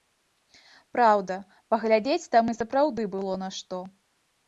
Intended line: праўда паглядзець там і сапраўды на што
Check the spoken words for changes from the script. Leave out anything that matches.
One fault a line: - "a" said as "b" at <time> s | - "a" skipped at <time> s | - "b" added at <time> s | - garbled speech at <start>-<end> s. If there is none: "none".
- "было" added at 3.2 s